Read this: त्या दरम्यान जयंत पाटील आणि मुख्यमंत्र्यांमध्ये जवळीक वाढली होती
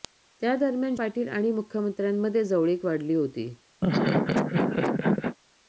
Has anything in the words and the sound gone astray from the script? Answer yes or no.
yes